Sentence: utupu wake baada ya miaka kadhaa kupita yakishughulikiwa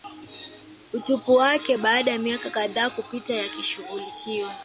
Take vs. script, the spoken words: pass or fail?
pass